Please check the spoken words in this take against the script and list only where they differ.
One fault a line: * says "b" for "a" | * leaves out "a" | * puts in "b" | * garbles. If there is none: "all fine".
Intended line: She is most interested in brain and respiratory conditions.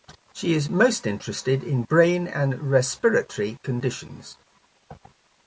all fine